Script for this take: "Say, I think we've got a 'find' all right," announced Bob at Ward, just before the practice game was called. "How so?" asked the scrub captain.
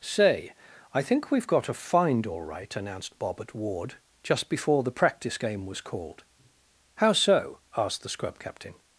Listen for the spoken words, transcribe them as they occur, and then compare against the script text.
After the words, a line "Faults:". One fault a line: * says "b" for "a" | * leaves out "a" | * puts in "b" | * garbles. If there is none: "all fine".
"Say, I think we've got a 'find' all right," announced Bob at Ward, just before the practice game was called. "How so?" asked the scrub captain.
Faults:
all fine